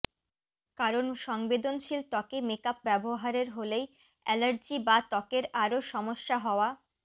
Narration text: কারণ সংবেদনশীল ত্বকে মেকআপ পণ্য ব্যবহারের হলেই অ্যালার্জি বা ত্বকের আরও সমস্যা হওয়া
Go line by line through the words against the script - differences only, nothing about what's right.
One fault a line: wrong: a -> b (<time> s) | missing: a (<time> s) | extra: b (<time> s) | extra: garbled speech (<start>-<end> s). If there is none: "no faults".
missing: পণ্য (2.8 s)